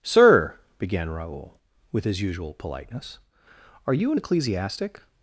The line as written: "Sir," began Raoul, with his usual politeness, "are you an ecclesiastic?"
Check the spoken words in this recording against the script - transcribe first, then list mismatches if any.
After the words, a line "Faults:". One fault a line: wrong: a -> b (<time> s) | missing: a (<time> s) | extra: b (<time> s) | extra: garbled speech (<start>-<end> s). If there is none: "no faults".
"Sir," began Raoul, with his usual politeness, "are you an ecclesiastic?"
Faults:
no faults